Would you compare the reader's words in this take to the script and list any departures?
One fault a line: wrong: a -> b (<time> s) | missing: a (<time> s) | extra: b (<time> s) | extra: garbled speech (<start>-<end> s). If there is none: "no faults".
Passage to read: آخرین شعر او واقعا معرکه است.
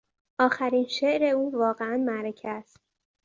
no faults